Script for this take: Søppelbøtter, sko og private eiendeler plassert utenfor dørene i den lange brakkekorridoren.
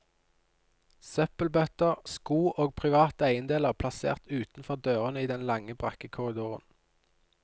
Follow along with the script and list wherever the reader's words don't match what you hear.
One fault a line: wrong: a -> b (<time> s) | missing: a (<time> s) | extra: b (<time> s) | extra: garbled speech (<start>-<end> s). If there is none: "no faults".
no faults